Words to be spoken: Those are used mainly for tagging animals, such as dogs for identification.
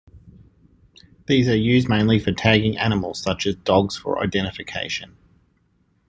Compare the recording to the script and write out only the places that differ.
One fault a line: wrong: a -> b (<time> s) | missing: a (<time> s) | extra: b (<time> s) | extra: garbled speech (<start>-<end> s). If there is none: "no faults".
wrong: Those -> These (1.3 s)